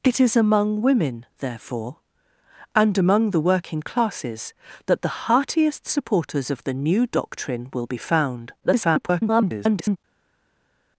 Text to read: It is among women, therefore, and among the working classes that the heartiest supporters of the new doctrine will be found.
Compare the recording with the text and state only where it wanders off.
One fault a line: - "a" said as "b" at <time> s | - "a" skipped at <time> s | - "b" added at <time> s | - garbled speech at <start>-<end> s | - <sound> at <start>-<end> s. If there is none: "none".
- garbled speech at 8.6-10.0 s